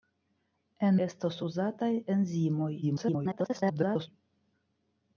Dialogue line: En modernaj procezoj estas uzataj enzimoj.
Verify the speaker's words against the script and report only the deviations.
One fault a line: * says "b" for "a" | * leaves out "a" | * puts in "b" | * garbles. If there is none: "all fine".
* leaves out "modernaj procezoj"
* garbles